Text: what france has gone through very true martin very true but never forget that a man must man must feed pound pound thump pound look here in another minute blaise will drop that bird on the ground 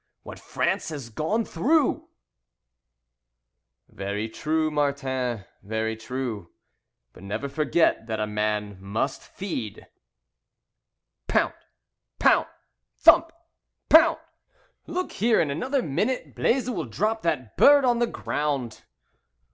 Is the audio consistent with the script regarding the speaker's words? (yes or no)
no